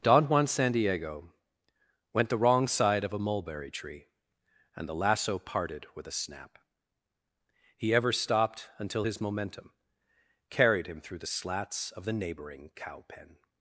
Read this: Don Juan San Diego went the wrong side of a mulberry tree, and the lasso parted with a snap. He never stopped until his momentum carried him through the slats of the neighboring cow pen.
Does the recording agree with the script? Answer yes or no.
no